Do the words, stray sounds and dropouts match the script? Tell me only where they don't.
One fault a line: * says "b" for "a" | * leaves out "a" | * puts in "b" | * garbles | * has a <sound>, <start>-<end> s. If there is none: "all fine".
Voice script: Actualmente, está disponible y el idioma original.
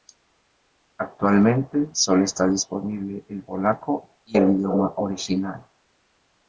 * puts in "sólo"
* puts in "el polaco"